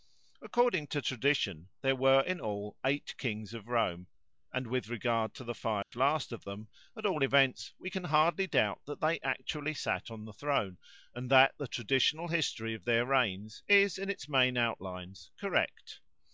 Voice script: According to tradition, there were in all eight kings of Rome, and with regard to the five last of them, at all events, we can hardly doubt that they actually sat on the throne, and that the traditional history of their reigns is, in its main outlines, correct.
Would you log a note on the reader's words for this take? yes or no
no